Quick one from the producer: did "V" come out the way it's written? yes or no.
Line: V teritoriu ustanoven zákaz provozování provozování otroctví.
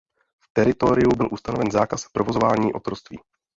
yes